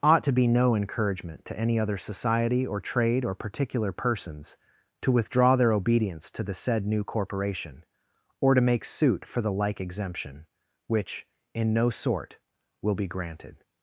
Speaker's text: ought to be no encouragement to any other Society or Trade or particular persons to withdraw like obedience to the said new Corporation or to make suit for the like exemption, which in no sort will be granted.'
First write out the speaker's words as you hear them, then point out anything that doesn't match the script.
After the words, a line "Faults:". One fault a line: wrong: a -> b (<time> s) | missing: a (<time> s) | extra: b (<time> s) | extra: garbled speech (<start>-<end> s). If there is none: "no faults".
ought to be no encouragement to any other Society or Trade or particular persons to withdraw their obedience to the said new Corporation or to make suit for the like exemption, which in no sort will be granted.'
Faults:
wrong: like -> their (5.6 s)